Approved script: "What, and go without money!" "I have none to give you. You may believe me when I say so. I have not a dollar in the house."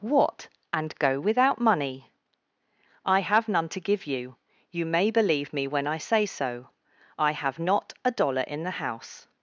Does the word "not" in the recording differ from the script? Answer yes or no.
no